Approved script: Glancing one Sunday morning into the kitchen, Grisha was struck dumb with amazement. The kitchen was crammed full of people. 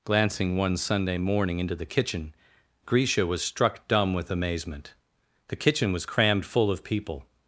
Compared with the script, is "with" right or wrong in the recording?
right